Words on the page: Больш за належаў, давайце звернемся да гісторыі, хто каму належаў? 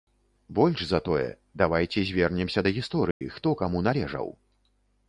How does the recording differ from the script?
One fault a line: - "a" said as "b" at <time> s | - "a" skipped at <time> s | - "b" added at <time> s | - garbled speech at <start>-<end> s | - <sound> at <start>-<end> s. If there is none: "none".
- "належаў" said as "тое" at 1.1 s
- dropout at 3.1-3.2 s